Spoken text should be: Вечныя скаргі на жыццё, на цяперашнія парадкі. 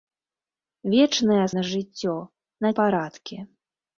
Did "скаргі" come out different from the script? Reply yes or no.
yes